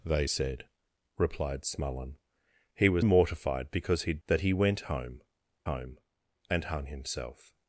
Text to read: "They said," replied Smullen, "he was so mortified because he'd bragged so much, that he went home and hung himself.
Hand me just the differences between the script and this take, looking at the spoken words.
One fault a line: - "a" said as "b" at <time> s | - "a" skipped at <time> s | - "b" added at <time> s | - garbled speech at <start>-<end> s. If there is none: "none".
- "so" skipped at 3.1 s
- "bragged so much" skipped at 4.2 s
- "home" added at 5.7 s